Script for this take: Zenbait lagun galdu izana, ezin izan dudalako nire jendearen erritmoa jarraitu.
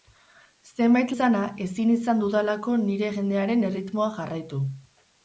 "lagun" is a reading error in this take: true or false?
true